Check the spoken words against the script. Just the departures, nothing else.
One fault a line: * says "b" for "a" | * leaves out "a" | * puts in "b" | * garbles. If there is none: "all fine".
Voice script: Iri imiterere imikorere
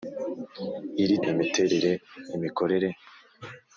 all fine